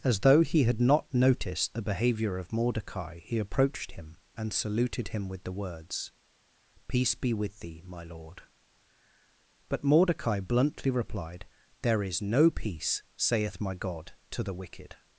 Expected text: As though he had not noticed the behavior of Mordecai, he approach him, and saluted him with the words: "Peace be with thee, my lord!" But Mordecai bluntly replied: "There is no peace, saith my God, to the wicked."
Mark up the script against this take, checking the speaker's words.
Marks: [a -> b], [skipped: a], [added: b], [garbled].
As though he had not noticed the behavior of Mordecai, he [approach -> approached] him, and saluted him with the words: "Peace be with thee, my lord!" But Mordecai bluntly replied: "There is no peace, saith my God, to the wicked."